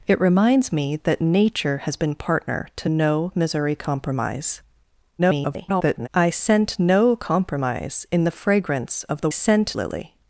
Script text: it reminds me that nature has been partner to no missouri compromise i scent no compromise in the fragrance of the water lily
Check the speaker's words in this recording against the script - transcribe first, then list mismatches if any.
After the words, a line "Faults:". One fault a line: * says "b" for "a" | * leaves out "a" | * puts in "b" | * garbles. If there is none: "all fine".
it reminds me that nature has been partner to no missouri compromise [garbled] i scent no compromise in the fragrance of the scent lily
Faults:
* garbles
* says "scent" for "water"